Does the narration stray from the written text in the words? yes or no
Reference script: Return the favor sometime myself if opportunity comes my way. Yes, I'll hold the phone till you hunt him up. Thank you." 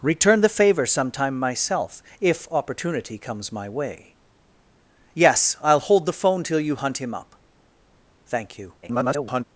yes